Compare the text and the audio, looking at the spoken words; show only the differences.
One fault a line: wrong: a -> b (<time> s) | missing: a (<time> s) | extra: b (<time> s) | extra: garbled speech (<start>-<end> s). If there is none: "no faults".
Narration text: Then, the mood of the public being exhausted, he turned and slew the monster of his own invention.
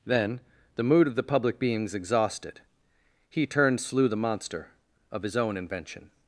wrong: being -> beings (1.6 s)
missing: and (3.8 s)